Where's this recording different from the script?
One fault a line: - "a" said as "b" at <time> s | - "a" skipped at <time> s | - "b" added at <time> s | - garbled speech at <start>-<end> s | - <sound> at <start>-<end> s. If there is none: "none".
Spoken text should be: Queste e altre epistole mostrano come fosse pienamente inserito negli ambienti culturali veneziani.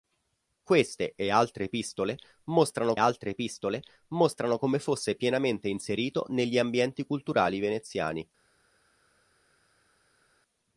- "altre epistole mostrano" added at 3.0 s